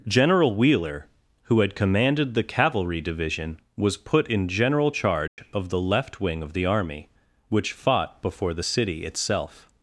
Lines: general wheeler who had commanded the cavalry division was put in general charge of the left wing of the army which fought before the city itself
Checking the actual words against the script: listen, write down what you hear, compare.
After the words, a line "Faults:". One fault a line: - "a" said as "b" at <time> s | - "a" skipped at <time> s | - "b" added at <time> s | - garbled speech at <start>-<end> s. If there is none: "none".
general wheeler who had commanded the cavalry division was put in general charge of the left wing of the army which fought before the city itself
Faults:
none